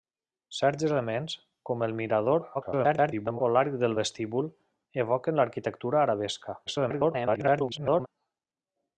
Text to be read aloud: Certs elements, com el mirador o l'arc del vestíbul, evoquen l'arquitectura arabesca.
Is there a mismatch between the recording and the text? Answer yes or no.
yes